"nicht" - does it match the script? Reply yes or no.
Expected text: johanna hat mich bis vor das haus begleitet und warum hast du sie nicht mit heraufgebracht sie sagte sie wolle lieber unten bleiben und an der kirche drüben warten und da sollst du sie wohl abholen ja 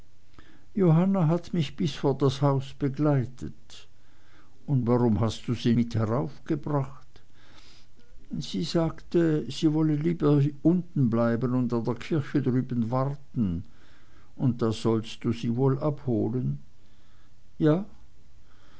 no